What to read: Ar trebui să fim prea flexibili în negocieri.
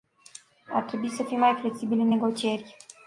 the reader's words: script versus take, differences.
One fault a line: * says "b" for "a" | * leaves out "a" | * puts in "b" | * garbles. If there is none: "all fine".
* says "mai" for "prea"